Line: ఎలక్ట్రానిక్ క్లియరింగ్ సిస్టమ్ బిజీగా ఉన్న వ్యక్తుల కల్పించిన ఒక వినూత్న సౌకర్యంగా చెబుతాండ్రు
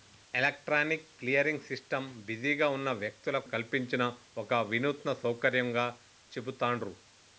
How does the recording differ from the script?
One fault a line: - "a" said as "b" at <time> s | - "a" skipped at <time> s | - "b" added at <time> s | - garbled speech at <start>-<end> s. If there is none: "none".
none